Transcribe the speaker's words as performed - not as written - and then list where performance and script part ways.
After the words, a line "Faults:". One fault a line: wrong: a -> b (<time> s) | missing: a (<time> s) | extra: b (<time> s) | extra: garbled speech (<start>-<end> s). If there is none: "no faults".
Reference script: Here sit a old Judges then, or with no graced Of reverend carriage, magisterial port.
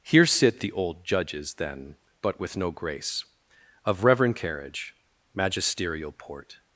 Here sit the old Judges then, but with no grace Of reverend carriage, magisterial port.
Faults:
wrong: a -> the (0.6 s)
wrong: or -> but (2.2 s)
wrong: graced -> grace (2.7 s)